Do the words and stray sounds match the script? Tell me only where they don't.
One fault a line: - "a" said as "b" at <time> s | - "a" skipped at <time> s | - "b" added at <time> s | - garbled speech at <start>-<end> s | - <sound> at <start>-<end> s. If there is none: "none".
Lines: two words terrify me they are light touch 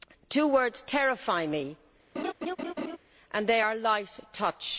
- laugh at 2.2-3.0 s
- "and" added at 3.3 s